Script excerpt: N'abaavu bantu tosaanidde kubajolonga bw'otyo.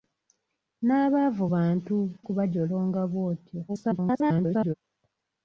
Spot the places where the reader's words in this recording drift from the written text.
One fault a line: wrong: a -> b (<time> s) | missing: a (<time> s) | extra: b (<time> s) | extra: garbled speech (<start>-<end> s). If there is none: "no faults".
missing: tosaanidde (1.9 s)
extra: garbled speech (3.7-4.7 s)